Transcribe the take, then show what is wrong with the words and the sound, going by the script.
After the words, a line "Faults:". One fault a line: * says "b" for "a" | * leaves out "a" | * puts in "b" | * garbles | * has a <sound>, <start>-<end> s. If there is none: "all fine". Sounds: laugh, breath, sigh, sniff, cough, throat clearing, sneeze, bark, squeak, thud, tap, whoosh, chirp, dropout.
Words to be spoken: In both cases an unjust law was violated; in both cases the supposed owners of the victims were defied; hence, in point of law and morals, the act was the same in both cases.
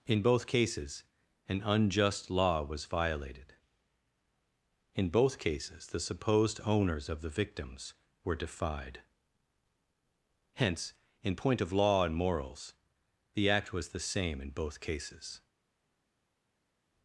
In both cases an unjust law was violated; in both cases the supposed owners of the victims were defied; hence, in point of law and morals, the act was the same in both cases.
Faults:
all fine